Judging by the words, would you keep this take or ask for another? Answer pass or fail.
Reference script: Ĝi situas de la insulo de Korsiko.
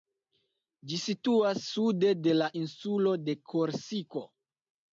fail